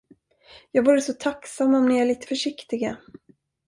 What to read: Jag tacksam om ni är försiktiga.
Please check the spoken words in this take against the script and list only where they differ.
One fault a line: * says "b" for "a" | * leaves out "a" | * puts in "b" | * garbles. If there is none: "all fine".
* puts in "vore så"
* puts in "lite"